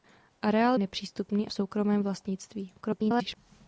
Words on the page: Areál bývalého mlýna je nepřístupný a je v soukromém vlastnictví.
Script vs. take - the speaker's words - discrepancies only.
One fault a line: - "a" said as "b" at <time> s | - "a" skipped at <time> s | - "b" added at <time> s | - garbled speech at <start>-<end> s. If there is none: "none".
- "bývalého mlýna je" skipped at 0.8 s
- "je" skipped at 1.5 s
- garbled speech at 2.8-3.4 s